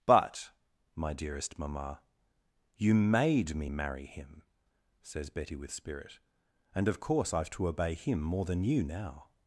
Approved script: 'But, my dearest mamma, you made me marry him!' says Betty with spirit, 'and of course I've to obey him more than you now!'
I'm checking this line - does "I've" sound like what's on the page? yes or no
yes